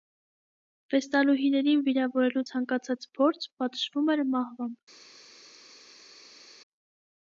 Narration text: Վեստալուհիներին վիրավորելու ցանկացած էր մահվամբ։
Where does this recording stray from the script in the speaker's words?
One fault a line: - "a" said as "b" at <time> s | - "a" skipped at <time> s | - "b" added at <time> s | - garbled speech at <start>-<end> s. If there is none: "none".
- "փորձ պատժվում" added at 3.2 s